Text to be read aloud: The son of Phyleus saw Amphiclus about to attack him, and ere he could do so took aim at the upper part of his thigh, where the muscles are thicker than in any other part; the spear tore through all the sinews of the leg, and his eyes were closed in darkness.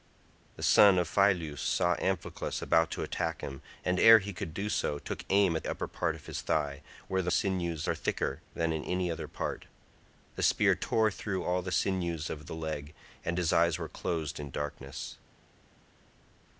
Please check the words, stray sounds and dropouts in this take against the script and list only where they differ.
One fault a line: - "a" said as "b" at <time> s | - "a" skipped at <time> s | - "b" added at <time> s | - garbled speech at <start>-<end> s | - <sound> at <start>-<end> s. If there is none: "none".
- "the" skipped at 5.7 s
- "muscles" said as "sinews" at 7.3 s